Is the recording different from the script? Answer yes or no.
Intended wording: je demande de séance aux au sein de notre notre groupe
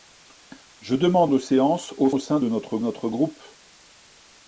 no